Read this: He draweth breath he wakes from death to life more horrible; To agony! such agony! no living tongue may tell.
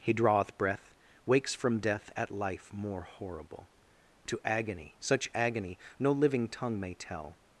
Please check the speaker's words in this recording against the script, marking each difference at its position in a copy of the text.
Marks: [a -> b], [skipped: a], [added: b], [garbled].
He draweth breath [skipped: he] wakes from death [to -> at] life more horrible; To agony! such agony! no living tongue may tell.